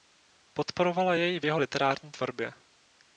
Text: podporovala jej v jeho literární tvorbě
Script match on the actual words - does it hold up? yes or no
yes